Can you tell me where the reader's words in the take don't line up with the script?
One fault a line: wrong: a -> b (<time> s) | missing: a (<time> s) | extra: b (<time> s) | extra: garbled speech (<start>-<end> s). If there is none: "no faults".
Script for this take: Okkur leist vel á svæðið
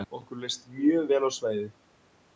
extra: mjög (0.8 s)